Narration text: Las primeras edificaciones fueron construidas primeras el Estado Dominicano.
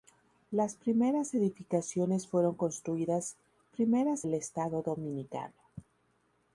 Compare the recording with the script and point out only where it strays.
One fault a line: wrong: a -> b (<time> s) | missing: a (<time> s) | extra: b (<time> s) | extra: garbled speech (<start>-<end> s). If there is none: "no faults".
no faults